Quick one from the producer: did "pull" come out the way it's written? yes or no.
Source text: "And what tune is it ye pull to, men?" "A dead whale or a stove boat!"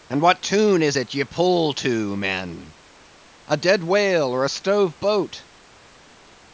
yes